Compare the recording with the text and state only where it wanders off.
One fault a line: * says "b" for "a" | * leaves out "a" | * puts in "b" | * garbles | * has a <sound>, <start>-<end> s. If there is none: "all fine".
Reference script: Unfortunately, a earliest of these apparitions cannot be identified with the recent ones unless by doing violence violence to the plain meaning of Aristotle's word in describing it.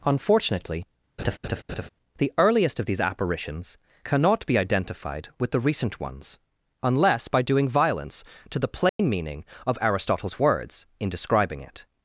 * has a laugh, 1.2-1.9 s
* says "the" for "a"
* leaves out "violence"
* has a dropout, 8.9-9.0 s
* says "words" for "word"